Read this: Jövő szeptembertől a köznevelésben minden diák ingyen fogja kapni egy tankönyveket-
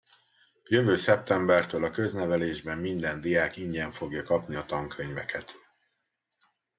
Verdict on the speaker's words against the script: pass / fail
fail